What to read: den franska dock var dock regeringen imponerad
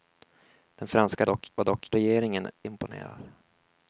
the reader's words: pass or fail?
pass